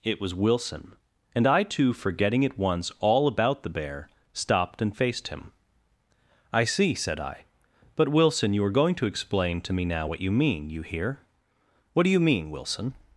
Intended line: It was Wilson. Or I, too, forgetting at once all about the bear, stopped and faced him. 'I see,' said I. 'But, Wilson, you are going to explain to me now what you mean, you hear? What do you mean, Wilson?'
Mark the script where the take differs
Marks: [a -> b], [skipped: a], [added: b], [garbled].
It was Wilson. [Or -> And] I, too, forgetting at once all about the bear, stopped and faced him. 'I see,' said I. 'But, Wilson, you are going to explain to me now what you mean, you hear? What do you mean, Wilson?'